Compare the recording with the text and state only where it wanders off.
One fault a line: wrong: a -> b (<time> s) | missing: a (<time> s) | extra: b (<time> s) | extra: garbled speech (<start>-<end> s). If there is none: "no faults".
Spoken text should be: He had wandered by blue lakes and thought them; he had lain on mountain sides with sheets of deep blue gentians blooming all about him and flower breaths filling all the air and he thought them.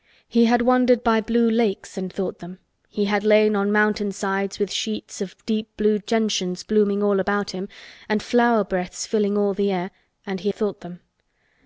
no faults